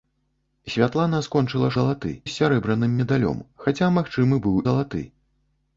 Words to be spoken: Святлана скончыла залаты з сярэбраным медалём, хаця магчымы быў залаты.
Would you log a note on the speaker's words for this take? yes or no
no